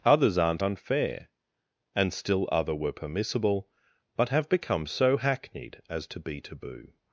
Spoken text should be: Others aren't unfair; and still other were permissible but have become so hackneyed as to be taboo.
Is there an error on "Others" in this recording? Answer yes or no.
no